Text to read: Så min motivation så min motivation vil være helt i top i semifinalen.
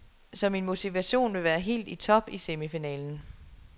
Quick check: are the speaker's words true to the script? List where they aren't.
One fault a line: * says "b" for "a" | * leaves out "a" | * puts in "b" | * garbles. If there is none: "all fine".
* leaves out "så min motivation"